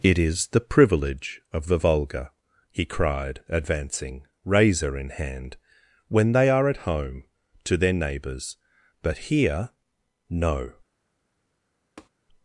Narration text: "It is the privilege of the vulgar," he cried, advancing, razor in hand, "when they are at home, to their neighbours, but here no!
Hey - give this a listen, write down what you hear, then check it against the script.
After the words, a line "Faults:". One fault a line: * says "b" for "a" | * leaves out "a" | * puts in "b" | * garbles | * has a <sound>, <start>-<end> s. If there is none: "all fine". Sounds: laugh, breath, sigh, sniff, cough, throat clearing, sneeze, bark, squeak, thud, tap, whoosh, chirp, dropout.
"It is the privilege of the vulgar," he cried, advancing, razor in hand, "when they are at home, to their neighbours, but here no!
Faults:
* has a tap, 12.0-12.1 s